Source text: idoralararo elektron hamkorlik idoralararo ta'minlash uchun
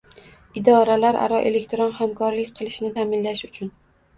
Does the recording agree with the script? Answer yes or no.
no